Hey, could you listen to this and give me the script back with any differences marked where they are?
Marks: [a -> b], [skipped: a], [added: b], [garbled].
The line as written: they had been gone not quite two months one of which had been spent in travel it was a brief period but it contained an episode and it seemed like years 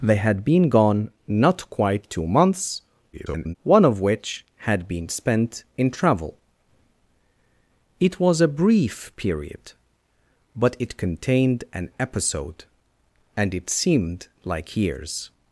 they had been gone not quite two months [garbled] one of which had been spent in travel it was a brief period but it contained an episode and it seemed like years